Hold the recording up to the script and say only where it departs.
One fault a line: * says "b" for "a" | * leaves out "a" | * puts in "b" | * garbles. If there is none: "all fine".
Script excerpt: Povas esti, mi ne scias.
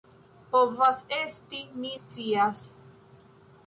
* leaves out "ne"